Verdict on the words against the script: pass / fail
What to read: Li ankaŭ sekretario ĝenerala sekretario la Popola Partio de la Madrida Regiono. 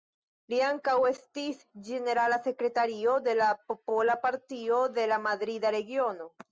fail